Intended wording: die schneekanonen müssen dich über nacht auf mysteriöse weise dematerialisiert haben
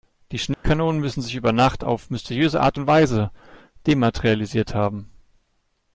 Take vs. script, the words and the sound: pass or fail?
fail